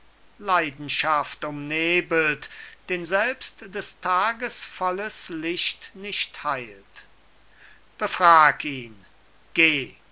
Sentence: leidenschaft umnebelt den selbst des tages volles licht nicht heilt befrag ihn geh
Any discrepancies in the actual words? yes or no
no